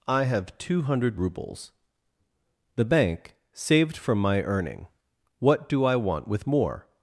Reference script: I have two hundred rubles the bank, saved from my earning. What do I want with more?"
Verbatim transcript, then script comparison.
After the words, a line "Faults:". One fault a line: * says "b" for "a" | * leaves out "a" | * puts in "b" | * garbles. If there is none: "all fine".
I have two hundred rubles the bank, saved from my earning. What do I want with more?"
Faults:
all fine